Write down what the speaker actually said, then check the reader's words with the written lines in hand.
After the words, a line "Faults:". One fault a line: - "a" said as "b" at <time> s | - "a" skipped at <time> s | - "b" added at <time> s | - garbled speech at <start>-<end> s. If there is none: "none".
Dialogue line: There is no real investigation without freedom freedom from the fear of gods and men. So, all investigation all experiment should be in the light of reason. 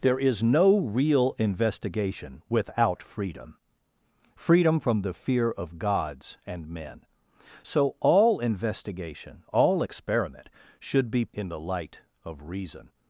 There is no real investigation without freedom freedom from the fear of gods and men. So, all investigation all experiment should be in the light of reason.
Faults:
none